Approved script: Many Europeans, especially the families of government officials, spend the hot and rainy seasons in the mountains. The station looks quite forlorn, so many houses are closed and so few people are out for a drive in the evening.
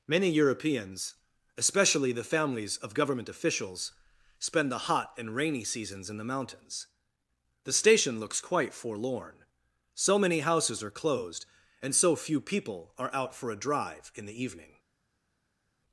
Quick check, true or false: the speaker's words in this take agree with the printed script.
true